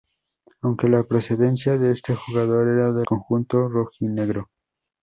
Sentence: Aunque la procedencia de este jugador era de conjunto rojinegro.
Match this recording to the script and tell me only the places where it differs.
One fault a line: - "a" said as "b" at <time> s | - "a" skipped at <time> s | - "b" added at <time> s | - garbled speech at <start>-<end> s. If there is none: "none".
none